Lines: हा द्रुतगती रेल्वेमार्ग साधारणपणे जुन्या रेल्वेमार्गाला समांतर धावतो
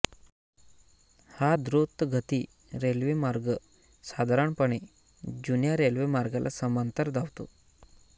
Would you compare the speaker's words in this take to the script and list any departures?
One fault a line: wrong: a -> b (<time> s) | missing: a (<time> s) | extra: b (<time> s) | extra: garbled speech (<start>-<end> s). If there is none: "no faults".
no faults